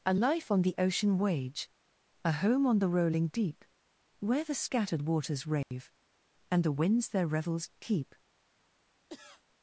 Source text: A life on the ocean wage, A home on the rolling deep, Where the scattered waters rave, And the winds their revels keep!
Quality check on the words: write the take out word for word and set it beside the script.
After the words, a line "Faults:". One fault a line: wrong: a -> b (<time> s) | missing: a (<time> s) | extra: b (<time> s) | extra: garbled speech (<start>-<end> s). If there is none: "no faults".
A life on the ocean wage, A home on the rolling deep, Where the scattered waters rave, And the winds their revels keep!
Faults:
no faults